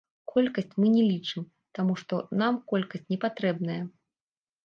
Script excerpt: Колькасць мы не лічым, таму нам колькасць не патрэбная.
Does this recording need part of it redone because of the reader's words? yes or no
yes